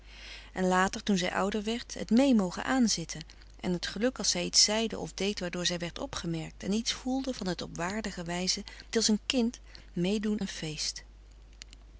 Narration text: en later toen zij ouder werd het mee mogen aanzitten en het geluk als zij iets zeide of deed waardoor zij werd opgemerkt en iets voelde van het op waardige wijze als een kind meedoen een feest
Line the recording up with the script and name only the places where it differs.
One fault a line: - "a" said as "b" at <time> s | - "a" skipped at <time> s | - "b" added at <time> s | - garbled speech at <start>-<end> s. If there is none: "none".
none